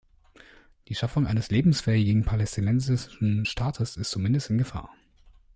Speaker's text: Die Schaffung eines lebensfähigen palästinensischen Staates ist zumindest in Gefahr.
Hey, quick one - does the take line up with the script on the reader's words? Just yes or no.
yes